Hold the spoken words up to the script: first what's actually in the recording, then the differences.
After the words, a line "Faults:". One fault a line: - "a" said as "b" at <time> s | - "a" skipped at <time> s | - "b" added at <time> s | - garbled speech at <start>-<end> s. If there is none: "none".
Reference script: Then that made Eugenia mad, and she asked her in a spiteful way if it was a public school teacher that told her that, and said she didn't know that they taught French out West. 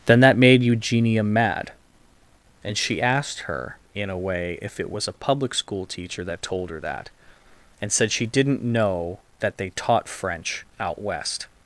Then that made Eugenia mad, and she asked her in a way if it was a public school teacher that told her that, and said she didn't know that they taught French out West.
Faults:
- "spiteful" skipped at 4.2 s